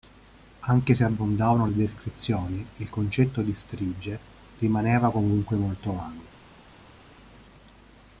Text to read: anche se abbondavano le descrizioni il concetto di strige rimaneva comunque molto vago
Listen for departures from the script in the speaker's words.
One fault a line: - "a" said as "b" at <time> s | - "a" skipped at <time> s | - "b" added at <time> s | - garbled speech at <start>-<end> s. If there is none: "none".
none